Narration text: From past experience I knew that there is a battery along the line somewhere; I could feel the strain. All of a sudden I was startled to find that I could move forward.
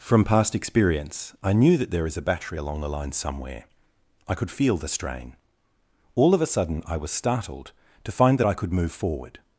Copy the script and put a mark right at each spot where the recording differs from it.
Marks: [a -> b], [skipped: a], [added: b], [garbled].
From past experience I knew that there is a battery along the line somewhere; I could feel the strain. All of a sudden I was startled to find that I could move forward.